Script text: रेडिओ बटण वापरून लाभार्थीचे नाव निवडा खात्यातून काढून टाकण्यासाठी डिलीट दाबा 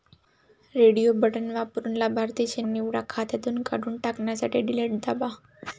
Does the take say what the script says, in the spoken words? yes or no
no